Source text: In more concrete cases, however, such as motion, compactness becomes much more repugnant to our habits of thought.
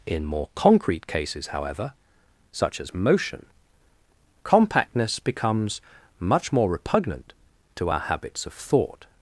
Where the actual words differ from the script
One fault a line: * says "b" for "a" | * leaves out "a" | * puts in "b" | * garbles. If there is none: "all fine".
all fine